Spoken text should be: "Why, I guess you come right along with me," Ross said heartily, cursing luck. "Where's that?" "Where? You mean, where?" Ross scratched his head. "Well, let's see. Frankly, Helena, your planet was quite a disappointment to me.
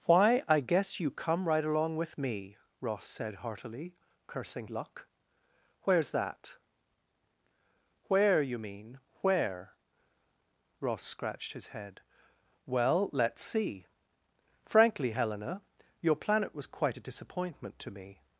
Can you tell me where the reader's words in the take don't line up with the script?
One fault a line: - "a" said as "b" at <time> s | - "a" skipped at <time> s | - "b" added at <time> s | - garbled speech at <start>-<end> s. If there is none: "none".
none